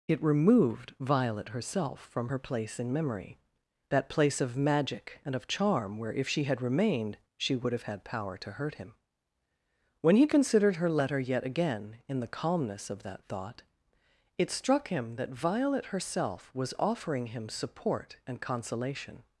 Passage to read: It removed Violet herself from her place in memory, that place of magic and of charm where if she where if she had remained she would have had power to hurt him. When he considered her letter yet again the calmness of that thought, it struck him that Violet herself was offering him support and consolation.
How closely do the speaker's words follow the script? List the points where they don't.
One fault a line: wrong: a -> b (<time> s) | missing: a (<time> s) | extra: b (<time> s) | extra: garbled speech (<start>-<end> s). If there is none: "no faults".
missing: where if she (6.4 s)
extra: in (12.1 s)